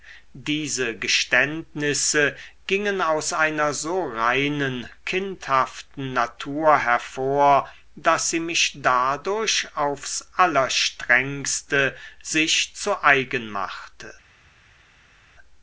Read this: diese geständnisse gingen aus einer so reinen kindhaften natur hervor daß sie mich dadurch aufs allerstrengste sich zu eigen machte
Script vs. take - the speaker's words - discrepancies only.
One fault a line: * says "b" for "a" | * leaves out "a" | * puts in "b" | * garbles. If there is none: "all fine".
all fine